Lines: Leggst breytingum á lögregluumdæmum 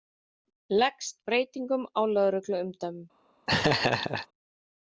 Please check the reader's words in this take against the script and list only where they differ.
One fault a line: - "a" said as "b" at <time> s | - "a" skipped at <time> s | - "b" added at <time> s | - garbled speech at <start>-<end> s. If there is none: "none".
none